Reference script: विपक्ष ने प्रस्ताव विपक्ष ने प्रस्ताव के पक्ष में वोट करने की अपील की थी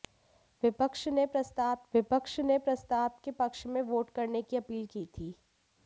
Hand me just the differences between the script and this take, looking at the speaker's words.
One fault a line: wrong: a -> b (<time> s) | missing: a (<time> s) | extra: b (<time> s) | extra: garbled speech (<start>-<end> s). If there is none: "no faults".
no faults